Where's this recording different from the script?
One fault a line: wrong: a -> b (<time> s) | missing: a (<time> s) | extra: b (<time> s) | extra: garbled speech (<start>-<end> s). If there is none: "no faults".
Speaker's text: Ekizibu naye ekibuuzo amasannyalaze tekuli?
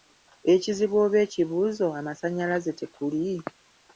wrong: naye -> oba (1.1 s)